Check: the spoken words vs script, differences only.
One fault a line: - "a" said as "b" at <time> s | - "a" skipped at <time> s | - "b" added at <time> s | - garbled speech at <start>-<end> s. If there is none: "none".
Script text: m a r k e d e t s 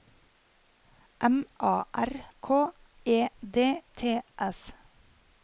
- "e" skipped at 3.8 s